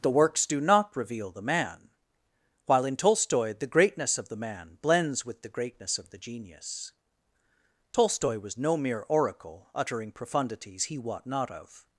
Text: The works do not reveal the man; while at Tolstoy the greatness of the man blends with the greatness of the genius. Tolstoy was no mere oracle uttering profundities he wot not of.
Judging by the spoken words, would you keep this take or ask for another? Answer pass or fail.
fail